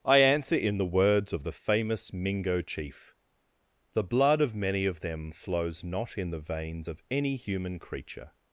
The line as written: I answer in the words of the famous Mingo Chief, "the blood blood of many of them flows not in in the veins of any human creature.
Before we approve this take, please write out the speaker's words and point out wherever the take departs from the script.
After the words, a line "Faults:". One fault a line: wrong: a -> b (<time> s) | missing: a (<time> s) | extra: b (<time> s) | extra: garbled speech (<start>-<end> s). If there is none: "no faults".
I answer in the words of the famous Mingo Chief, "the blood of many of them flows not in the veins of any human creature.
Faults:
missing: blood (4.4 s)
missing: in (6.3 s)